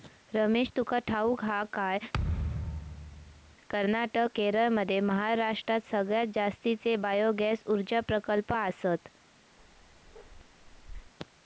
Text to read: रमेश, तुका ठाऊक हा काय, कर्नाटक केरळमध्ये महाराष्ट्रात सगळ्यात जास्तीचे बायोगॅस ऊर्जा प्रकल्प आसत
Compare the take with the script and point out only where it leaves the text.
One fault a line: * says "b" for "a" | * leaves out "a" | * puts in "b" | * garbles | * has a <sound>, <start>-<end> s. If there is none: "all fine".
* has a thud, 2.1-3.6 s
* has a bark, 9.6-11.1 s